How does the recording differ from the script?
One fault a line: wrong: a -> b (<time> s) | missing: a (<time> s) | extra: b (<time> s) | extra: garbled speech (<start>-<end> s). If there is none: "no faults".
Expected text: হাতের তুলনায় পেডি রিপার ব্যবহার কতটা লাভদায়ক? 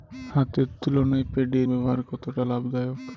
missing: রিপার (1.6 s)